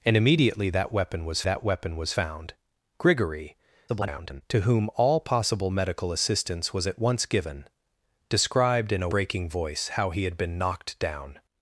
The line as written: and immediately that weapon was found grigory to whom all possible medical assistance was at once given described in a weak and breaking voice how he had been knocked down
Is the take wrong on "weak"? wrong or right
wrong